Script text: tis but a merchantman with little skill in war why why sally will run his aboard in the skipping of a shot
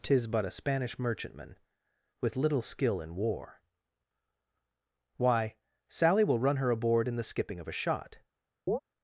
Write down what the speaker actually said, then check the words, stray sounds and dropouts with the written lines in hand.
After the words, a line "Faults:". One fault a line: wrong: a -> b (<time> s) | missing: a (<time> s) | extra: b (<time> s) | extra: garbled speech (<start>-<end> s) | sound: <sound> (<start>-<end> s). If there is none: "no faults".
tis but a spanish merchantman with little skill in war why sally will run her aboard in the skipping of a shot
Faults:
extra: spanish (0.5 s)
missing: why (5.5 s)
wrong: his -> her (6.6 s)
sound: chirp (8.7-8.8 s)